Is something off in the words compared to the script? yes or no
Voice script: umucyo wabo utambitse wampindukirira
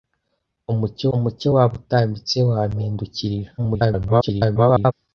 yes